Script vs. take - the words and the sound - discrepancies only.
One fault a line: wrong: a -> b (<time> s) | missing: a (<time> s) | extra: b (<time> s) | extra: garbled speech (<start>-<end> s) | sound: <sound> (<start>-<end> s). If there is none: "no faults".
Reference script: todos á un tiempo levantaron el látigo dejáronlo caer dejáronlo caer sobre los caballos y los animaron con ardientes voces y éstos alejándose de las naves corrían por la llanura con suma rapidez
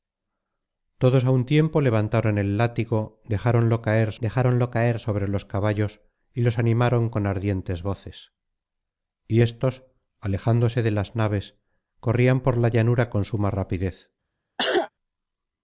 sound: cough (14.6-14.9 s)